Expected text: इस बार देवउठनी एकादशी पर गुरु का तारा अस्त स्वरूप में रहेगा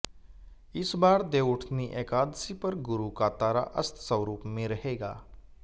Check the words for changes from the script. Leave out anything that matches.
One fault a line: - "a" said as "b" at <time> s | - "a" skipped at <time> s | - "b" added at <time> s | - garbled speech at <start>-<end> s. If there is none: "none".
none